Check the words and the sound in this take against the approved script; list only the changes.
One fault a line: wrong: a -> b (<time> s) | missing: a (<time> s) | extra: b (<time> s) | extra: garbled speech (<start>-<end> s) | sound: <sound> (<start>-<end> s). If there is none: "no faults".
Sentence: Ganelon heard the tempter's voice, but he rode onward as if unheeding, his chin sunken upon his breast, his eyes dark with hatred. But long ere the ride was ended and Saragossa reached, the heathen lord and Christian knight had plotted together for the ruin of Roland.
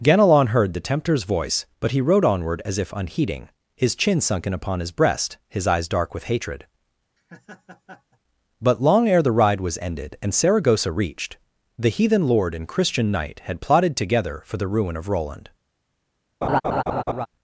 sound: laugh (7.2-8.2 s)
sound: laugh (16.4-17.3 s)